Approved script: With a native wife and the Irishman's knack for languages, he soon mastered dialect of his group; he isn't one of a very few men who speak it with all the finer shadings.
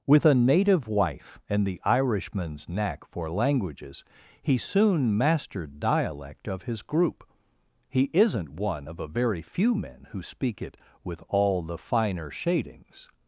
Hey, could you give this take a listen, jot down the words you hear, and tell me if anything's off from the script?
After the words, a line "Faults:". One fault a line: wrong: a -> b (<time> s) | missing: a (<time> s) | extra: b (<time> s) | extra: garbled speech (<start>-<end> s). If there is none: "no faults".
With a native wife and the Irishman's knack for languages, he soon mastered dialect of his group; he isn't one of a very few men who speak it with all the finer shadings.
Faults:
no faults